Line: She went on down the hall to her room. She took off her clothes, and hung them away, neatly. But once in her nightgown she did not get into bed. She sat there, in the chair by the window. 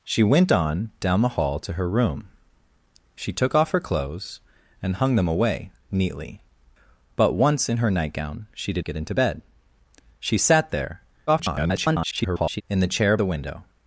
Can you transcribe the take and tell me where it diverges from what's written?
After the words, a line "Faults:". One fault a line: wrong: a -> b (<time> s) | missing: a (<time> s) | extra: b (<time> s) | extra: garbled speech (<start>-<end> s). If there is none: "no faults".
She went on down the hall to her room. She took off her clothes, and hung them away, neatly. But once in her nightgown she did get into bed. She sat there, [garbled] in the chair the window.
Faults:
missing: not (8.8 s)
extra: garbled speech (11.3-12.6 s)
missing: by (13.2 s)